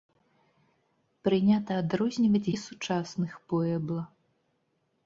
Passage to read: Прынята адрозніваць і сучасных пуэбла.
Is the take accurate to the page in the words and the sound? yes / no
yes